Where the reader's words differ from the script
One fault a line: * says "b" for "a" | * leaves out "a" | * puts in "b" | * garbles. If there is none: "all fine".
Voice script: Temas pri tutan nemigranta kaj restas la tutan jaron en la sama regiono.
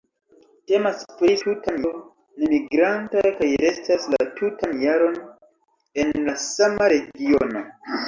all fine